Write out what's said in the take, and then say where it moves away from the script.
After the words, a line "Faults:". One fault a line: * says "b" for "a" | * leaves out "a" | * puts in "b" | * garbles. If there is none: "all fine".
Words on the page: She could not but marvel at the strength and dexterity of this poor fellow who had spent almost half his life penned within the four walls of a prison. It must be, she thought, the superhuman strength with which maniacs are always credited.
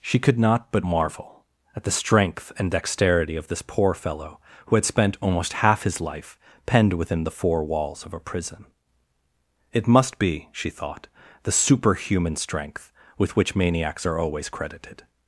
She could not but marvel at the strength and dexterity of this poor fellow who had spent almost half his life penned within the four walls of a prison. It must be, she thought, the superhuman strength with which maniacs are always credited.
Faults:
all fine